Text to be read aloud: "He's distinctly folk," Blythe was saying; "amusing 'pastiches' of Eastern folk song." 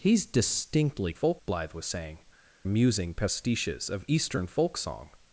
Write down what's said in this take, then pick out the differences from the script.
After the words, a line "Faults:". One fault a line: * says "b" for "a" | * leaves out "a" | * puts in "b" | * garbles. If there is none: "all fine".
"He's distinctly folk," Blythe was saying; "amusing 'pastiches' of Eastern folk song."
Faults:
all fine